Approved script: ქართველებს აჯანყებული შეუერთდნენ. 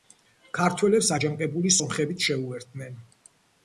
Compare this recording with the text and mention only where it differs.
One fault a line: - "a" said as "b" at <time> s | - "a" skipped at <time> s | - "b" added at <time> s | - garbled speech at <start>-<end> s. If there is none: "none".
- "სომხებიც" added at 1.8 s